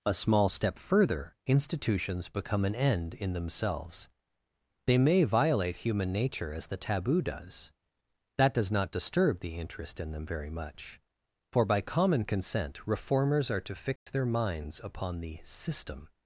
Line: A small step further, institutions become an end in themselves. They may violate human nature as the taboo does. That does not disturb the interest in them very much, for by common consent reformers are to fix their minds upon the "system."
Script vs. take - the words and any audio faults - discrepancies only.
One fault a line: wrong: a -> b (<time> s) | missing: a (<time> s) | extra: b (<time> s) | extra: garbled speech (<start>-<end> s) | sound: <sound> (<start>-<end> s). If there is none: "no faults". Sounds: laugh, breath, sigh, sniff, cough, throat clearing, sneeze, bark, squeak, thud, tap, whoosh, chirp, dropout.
sound: dropout (14.0-14.1 s)